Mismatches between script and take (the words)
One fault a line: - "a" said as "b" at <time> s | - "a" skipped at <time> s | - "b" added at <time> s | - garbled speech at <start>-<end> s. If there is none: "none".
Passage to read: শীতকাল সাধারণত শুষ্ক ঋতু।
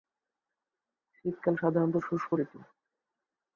none